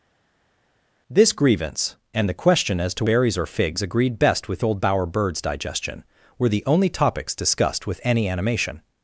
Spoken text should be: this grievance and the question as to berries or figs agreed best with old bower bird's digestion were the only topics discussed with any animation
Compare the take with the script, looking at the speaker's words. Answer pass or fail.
pass